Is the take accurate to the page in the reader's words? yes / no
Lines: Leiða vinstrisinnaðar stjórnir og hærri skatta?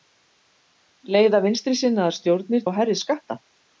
yes